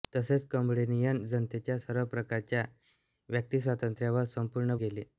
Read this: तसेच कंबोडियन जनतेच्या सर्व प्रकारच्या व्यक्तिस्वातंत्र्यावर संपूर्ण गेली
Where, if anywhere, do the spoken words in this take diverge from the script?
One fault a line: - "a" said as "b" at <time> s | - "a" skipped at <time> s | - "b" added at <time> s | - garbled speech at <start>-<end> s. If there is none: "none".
none